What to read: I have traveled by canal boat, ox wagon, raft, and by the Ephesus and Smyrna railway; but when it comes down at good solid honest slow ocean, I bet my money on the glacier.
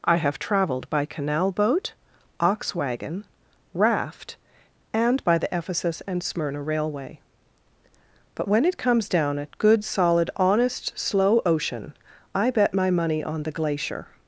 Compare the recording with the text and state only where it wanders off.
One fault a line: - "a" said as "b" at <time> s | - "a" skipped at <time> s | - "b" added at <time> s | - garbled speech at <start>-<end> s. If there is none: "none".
none